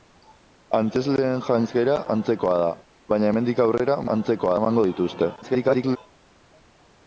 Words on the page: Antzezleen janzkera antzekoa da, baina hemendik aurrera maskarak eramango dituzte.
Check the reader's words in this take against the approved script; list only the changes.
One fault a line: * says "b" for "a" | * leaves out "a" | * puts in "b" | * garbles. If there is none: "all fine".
* says "antzekoa" for "maskarak"
* garbles